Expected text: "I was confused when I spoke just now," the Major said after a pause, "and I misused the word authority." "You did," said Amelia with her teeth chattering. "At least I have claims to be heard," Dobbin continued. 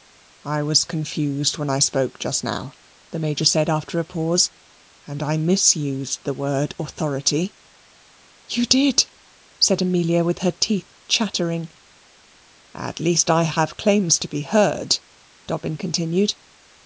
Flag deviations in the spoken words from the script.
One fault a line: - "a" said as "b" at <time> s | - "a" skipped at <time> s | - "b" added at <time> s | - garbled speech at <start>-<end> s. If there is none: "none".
none